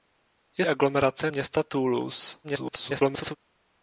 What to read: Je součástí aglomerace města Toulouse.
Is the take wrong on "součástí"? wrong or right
wrong